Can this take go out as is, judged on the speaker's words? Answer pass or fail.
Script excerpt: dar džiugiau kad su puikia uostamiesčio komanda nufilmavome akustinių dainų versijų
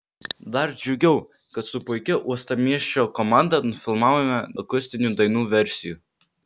pass